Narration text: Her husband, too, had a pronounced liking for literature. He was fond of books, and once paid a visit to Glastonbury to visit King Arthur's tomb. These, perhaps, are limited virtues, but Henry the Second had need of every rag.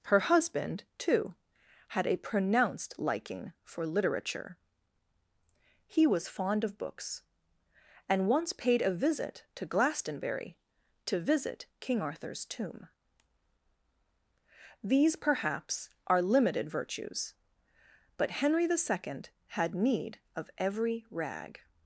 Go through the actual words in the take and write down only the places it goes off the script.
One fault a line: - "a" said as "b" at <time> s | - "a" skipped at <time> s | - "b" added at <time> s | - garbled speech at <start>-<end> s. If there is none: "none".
none